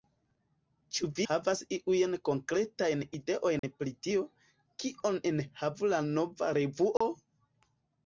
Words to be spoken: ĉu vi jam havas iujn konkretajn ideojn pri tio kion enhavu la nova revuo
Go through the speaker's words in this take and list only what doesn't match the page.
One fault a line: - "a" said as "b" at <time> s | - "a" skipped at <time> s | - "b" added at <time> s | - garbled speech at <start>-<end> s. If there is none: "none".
- "jam" skipped at 1.2 s